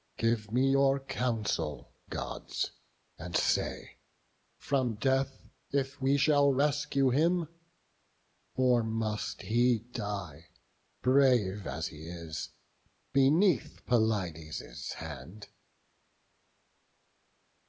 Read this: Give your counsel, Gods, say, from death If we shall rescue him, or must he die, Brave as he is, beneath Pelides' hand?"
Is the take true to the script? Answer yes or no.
no